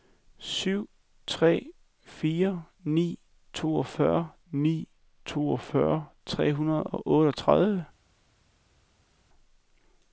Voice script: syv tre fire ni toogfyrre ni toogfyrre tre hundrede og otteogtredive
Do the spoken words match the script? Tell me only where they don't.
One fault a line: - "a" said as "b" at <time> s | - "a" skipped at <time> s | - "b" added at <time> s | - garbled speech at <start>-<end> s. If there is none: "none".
none